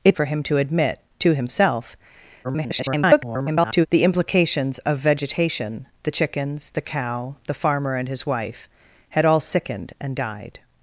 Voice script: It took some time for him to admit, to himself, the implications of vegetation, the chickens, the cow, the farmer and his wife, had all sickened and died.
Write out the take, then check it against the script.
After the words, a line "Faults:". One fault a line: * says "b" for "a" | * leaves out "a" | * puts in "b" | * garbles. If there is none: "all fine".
It for him to admit, to himself, [garbled] the implications of vegetation, the chickens, the cow, the farmer and his wife, had all sickened and died.
Faults:
* leaves out "took some time"
* garbles